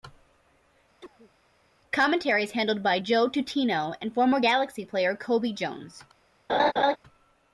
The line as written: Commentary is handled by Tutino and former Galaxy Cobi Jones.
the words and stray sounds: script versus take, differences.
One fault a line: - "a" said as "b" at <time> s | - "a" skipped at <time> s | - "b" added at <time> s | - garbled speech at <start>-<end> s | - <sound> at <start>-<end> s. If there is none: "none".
- cough at 1.0-1.3 s
- "Joe" added at 3.0 s
- "player" added at 4.9 s
- laugh at 6.5-7.0 s